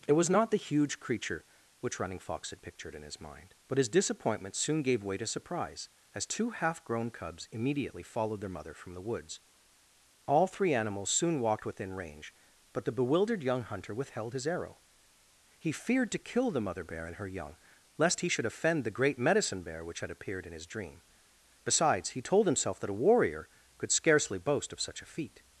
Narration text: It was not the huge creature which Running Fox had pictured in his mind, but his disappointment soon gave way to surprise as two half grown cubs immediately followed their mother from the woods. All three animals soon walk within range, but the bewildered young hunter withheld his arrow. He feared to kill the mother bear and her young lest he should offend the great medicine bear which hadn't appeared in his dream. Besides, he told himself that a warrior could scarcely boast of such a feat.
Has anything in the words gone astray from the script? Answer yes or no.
yes